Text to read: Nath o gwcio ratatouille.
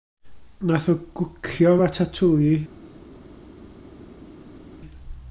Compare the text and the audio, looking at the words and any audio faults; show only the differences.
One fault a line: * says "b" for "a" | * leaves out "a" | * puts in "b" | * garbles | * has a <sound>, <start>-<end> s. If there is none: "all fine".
all fine